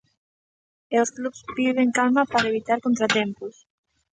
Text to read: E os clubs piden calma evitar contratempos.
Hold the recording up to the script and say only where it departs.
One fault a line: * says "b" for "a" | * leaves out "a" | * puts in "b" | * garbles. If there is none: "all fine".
* puts in "para"